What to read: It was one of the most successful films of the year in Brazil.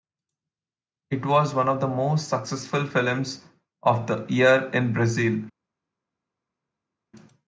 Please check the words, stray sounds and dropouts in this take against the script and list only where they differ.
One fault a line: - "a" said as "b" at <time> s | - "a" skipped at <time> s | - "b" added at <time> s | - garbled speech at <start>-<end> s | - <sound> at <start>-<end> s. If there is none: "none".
none